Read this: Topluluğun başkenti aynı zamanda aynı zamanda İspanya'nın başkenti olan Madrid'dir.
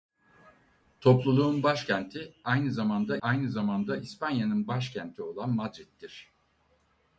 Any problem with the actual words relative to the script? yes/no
no